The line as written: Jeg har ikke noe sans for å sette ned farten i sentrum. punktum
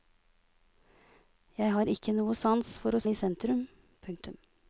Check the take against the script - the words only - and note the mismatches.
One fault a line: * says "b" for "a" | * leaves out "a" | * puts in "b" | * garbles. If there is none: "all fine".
* leaves out "sette ned farten"